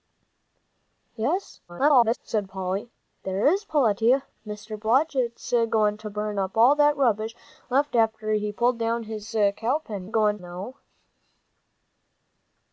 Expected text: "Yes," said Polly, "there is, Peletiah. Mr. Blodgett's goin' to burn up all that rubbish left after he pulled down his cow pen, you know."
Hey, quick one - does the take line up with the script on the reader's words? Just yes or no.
no